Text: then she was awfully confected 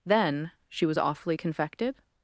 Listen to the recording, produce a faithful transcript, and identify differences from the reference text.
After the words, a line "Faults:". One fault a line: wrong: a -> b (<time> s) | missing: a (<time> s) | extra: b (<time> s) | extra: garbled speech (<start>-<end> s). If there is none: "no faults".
then she was awfully confected
Faults:
no faults